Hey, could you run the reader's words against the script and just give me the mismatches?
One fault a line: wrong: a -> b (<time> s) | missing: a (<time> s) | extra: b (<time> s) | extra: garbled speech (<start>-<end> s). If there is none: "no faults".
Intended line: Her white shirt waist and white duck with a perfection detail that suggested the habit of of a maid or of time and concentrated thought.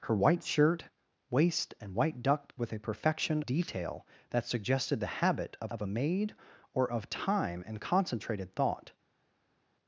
no faults